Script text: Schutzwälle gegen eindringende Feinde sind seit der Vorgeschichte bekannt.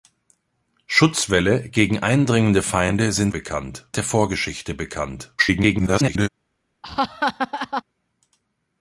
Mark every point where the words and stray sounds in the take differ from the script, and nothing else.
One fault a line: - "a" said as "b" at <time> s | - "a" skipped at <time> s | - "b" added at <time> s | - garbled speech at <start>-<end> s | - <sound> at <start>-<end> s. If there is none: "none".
- "seit" said as "bekannt" at 3.3 s
- garbled speech at 5.4-6.3 s
- laugh at 6.8-7.8 s